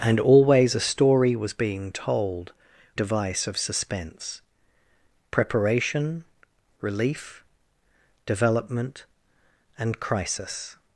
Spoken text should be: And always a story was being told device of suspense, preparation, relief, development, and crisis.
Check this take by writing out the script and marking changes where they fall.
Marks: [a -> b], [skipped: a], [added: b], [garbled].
And always a story was being told device of suspense, preparation, relief, development, and crisis.